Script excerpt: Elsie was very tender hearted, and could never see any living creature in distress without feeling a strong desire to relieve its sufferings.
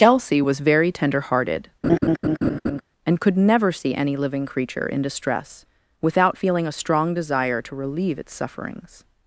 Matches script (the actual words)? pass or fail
pass